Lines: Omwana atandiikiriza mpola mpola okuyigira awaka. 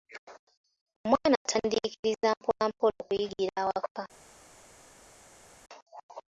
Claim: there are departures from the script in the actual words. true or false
false